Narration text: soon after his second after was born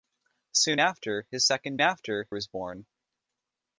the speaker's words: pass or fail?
pass